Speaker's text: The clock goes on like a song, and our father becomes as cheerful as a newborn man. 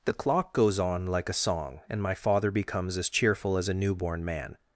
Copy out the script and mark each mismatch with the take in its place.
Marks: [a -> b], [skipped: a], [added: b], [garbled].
The clock goes on like a song, and [our -> my] father becomes as cheerful as a newborn man.